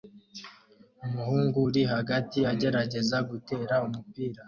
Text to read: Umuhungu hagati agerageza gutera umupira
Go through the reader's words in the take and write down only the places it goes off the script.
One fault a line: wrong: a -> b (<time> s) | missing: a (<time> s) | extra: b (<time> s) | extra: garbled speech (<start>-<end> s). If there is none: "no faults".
extra: uri (1.7 s)